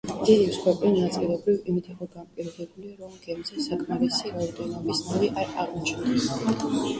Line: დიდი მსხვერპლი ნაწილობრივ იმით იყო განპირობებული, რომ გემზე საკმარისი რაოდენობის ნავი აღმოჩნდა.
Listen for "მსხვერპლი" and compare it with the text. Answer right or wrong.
right